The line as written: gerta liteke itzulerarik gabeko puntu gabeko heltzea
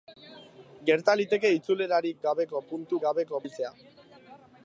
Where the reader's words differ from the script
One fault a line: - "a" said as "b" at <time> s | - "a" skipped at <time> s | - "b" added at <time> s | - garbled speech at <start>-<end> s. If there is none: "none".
none